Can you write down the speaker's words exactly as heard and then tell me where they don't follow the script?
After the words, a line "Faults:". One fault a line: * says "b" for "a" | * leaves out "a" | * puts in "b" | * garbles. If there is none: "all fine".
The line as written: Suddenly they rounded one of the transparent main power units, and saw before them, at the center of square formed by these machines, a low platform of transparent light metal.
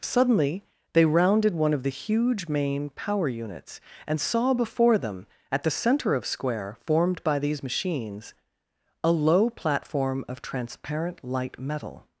Suddenly they rounded one of the huge main power units, and saw before them, at the center of square formed by these machines, a low platform of transparent light metal.
Faults:
* says "huge" for "transparent"